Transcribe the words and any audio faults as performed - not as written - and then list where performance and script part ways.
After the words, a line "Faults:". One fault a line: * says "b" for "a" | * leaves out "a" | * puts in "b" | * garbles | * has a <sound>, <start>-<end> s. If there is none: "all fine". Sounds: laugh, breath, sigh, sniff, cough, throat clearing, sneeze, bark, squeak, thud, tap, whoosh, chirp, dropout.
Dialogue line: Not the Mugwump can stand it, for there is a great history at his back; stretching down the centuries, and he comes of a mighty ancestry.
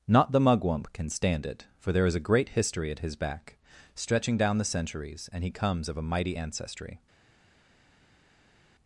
Not the Mugwump can stand it, for there is a great history at his back; stretching down the centuries, and he comes of a mighty ancestry.
Faults:
all fine